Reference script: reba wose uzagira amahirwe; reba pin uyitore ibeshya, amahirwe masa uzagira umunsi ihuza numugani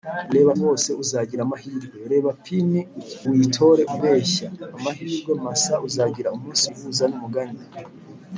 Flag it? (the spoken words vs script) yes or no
no